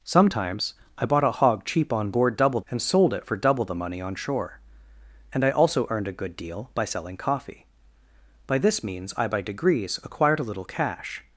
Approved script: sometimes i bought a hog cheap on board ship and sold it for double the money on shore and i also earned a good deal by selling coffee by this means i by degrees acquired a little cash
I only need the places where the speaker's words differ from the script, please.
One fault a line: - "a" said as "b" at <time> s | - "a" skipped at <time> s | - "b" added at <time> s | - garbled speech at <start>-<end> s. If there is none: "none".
- "ship" said as "double" at 2.3 s